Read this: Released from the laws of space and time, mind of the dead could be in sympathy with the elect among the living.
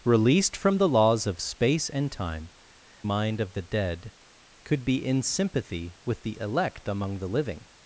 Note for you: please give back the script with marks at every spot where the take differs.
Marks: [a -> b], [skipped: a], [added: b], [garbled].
Released from the laws of space and time, mind of the dead could be in sympathy with the elect among the living.